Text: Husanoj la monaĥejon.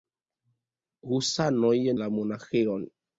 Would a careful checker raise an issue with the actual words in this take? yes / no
no